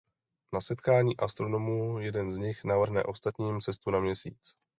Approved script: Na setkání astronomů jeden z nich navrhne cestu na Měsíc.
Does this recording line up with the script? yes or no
no